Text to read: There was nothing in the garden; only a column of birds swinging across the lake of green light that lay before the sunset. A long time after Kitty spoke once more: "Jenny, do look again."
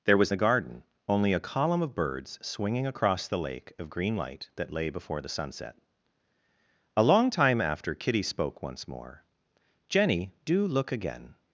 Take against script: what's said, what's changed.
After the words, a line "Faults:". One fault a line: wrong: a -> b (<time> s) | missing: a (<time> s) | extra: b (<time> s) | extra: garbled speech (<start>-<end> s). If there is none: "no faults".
There was the garden; only a column of birds swinging across the lake of green light that lay before the sunset. A long time after Kitty spoke once more: "Jenny, do look again."
Faults:
missing: nothing in (0.3 s)